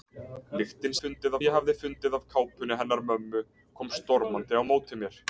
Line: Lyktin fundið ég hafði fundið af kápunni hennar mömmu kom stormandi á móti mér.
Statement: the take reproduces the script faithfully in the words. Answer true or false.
true